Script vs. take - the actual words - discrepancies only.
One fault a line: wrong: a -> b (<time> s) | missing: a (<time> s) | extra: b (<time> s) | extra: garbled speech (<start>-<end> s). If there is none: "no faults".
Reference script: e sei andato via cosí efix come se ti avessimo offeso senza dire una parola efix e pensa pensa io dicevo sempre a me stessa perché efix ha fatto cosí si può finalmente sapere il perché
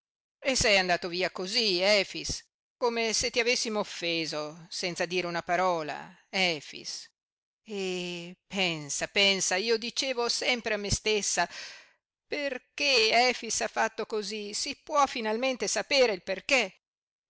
no faults